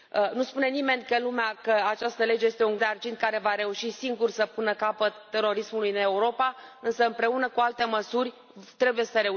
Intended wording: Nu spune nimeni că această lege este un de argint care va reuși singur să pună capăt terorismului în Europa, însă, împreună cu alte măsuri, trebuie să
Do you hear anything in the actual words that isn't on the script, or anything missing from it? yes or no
no